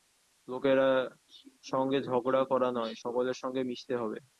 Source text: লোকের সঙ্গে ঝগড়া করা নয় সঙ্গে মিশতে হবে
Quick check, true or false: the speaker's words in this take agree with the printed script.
false